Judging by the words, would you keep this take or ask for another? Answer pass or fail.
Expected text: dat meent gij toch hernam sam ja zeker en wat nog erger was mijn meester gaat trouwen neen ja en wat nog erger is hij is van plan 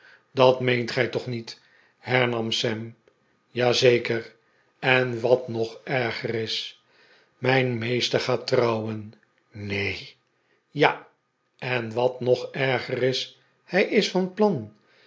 fail